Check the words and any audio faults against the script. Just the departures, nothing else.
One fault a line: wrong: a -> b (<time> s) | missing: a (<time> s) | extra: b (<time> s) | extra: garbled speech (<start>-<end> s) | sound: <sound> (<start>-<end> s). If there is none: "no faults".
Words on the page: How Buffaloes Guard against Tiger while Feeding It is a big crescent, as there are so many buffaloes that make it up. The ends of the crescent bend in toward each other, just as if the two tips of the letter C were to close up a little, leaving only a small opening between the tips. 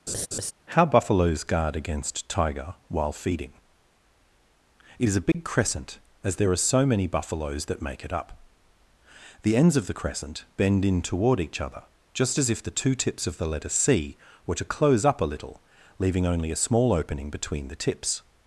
sound: laugh (0.1-0.5 s)
sound: dropout (5.3-5.3 s)